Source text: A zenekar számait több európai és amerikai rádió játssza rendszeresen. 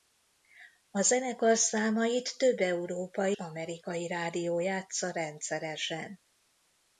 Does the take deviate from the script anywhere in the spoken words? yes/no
yes